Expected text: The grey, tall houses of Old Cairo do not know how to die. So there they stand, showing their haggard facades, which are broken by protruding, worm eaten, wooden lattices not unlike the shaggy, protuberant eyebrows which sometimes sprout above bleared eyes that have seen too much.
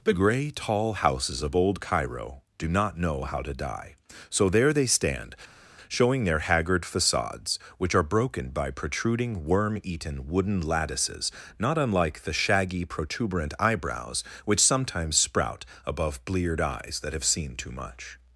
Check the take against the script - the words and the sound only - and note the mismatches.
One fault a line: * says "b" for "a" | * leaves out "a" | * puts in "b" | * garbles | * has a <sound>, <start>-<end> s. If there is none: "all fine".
all fine